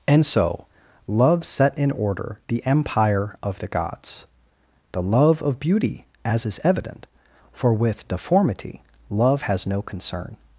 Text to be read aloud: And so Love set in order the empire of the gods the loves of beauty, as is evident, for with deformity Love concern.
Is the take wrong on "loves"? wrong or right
wrong